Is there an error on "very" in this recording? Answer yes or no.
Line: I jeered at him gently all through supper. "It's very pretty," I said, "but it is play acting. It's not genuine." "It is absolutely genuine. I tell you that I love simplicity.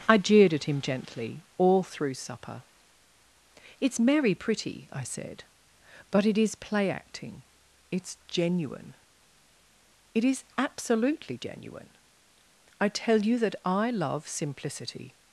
yes